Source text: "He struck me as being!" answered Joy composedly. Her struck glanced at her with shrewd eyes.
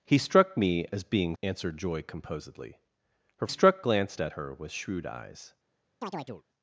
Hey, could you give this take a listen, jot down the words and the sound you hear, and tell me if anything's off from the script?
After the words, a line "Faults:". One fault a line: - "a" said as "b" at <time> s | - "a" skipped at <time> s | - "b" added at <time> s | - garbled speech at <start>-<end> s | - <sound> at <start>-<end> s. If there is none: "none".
"He struck me as being!" answered Joy composedly. Her struck glanced at her with shrewd eyes.
Faults:
- chirp at 6.0-6.4 s